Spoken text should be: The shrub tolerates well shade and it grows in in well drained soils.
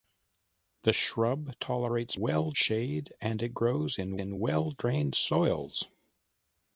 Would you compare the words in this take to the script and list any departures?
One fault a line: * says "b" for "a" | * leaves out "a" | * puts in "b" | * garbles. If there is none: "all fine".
all fine